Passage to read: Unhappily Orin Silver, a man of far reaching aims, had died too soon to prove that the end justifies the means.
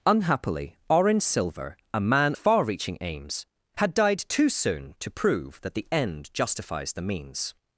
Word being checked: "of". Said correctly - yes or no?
no